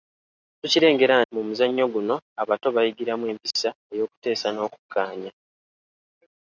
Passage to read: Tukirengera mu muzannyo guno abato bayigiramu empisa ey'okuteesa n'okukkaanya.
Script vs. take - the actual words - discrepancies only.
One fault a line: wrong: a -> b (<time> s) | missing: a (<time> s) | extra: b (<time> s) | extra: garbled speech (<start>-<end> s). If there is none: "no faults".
no faults